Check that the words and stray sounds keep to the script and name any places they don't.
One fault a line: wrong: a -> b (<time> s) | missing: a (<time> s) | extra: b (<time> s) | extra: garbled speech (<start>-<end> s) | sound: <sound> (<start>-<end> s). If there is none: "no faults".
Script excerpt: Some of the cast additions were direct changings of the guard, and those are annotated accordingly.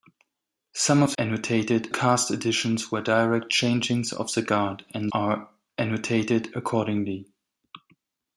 wrong: the -> annotated (1.2 s)
missing: those (5.1 s)